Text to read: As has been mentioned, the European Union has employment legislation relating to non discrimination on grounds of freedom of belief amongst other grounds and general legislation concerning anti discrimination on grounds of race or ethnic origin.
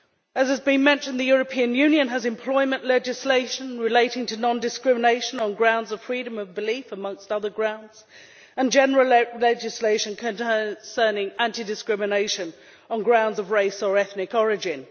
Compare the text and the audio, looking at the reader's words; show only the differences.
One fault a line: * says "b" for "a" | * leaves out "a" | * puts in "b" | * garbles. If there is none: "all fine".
all fine